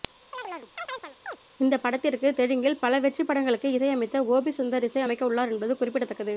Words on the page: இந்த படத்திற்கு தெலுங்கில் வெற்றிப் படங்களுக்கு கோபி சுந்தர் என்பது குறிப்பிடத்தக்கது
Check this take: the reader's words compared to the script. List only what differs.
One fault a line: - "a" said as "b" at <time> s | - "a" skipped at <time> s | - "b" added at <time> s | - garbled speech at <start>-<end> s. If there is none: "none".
- "பல" added at 2.8 s
- "இசையமைத்த" added at 3.7 s
- "இசை அமைக்க உள்ளார்" added at 4.9 s